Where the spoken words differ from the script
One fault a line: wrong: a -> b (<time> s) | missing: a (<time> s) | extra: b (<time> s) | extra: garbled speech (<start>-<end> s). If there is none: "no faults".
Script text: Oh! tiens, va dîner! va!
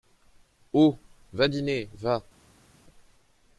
missing: tiens (1.0 s)